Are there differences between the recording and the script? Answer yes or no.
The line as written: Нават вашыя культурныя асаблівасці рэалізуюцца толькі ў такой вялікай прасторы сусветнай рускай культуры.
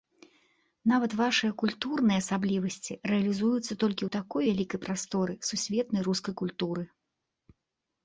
no